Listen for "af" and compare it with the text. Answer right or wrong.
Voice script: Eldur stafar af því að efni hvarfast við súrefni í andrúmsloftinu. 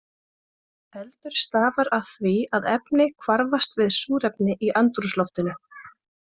right